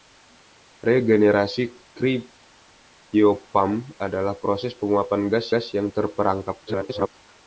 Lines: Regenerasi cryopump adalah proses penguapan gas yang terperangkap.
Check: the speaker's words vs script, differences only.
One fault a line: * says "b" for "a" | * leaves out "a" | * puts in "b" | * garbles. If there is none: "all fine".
* puts in "gas"
* garbles